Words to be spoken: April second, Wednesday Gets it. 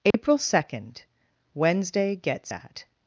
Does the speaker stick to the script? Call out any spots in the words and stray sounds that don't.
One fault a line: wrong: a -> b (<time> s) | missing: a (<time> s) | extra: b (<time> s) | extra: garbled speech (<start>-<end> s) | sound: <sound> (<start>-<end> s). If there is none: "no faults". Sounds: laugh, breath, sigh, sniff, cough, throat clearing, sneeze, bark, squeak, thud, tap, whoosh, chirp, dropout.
sound: dropout (0.1-0.1 s)
wrong: it -> at (2.5 s)